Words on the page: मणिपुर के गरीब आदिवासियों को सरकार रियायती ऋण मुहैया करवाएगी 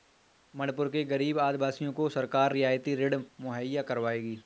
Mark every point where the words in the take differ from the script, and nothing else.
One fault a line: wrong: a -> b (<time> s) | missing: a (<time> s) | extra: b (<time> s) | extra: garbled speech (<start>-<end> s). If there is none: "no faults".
no faults